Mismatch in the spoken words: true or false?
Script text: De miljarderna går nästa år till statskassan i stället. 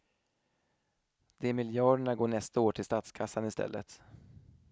false